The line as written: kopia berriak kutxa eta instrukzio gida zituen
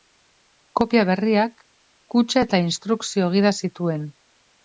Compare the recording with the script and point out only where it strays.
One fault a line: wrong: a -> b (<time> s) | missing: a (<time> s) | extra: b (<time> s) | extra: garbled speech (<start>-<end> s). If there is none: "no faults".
no faults